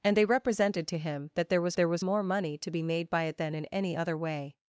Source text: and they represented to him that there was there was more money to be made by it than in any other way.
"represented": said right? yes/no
yes